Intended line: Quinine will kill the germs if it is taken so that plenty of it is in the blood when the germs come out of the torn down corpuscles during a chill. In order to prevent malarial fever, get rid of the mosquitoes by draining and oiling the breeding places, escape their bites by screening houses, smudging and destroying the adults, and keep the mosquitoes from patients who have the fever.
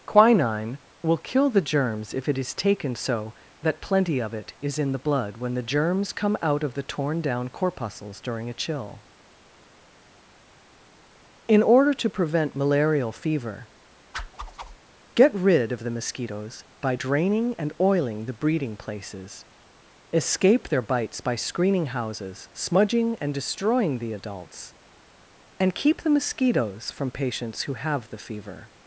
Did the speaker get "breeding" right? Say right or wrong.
right